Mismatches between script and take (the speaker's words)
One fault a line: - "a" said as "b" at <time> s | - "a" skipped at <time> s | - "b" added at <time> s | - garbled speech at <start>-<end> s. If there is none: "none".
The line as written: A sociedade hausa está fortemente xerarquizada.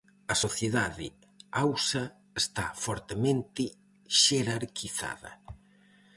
none